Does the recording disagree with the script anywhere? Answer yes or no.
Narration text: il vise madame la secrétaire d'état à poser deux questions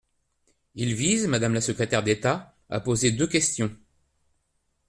no